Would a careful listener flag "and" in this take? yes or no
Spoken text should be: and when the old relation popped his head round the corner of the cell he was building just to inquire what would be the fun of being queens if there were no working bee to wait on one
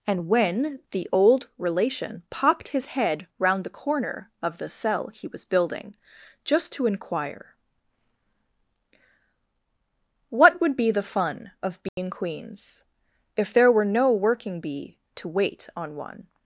no